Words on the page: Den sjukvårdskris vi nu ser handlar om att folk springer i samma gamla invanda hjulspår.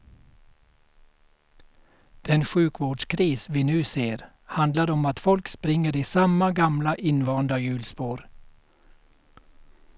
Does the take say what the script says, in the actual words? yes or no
yes